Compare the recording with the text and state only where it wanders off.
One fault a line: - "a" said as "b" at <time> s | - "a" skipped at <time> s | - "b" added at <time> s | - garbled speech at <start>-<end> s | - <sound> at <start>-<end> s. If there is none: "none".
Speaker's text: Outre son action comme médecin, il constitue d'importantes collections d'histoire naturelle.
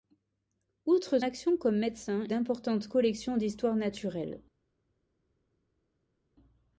- "son" skipped at 1.2 s
- "il constitue" skipped at 2.2 s